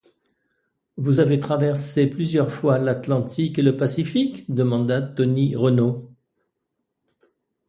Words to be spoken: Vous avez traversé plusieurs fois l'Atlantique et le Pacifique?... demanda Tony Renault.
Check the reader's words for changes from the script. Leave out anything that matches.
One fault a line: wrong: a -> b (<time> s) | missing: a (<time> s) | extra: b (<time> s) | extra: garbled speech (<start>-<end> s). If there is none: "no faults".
no faults